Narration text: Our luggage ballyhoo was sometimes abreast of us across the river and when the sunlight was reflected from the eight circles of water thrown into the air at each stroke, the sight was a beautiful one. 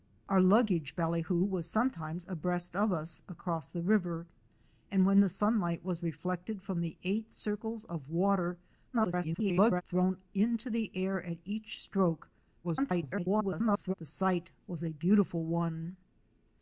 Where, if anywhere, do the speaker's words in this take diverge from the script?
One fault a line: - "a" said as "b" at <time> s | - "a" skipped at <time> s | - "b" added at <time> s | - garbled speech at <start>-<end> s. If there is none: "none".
- garbled speech at 8.9-9.8 s
- garbled speech at 12.6-13.9 s